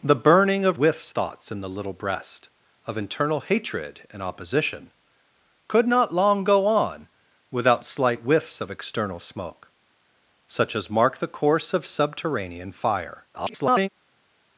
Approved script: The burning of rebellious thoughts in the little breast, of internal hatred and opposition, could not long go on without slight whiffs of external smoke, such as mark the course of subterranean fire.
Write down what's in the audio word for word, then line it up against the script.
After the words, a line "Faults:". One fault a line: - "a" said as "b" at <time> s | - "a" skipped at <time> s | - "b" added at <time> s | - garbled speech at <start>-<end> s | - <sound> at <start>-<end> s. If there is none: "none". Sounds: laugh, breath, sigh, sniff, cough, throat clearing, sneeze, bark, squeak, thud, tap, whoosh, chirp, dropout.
The burning of whiffs thoughts in the little breast, of internal hatred and opposition, could not long go on without slight whiffs of external smoke, such as mark the course of subterranean fire. [garbled]
Faults:
- "rebellious" said as "whiffs" at 0.7 s
- garbled speech at 13.3-13.9 s